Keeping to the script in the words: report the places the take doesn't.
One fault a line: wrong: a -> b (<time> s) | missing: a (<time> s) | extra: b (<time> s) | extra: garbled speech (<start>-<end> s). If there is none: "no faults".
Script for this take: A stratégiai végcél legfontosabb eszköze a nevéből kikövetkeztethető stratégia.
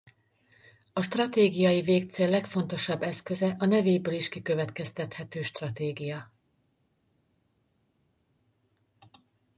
extra: is (4.1 s)